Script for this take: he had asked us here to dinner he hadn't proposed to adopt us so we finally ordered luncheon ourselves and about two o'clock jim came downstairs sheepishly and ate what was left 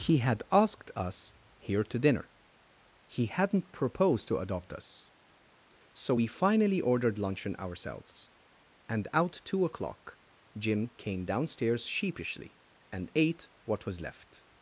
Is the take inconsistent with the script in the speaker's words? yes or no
yes